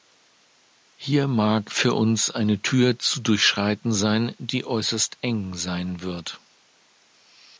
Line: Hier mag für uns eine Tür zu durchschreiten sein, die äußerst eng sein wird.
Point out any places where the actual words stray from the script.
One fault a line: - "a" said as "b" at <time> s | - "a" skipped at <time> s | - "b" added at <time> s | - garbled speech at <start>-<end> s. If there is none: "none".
none